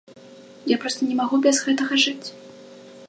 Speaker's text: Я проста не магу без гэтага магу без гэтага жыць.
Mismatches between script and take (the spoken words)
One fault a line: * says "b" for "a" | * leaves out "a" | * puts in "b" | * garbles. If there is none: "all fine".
* leaves out "магу без гэтага"